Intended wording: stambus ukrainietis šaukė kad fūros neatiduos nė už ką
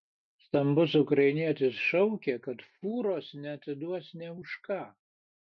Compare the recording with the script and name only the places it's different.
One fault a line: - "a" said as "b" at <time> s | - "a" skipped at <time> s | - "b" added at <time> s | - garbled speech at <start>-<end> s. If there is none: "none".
none